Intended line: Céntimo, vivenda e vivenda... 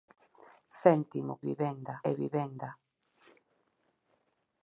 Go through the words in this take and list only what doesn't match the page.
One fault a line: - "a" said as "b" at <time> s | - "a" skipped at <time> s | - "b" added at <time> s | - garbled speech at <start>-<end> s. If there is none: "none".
none